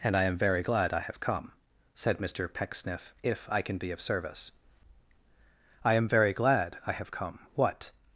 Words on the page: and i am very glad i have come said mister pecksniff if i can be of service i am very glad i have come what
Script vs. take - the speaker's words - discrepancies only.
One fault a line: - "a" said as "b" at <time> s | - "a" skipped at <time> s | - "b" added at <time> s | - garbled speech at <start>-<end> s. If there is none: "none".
none